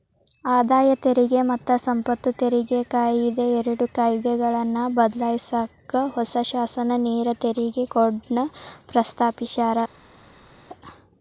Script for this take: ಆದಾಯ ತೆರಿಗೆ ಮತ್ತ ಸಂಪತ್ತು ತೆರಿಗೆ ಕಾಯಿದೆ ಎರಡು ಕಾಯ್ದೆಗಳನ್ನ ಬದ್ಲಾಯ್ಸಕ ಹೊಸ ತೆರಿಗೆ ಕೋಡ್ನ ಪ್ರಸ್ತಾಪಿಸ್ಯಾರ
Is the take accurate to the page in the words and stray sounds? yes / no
no